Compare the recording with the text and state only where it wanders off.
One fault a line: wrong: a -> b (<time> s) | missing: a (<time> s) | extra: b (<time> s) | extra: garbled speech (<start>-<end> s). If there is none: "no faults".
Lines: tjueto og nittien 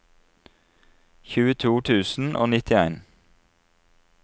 extra: tusen (1.9 s)